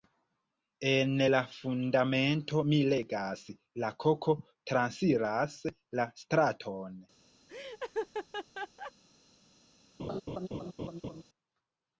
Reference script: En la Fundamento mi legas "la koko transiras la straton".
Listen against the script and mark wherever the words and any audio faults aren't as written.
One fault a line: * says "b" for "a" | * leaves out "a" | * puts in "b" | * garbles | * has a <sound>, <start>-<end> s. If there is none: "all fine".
* has a laugh, 7.5-8.9 s
* has a laugh, 10.0-11.2 s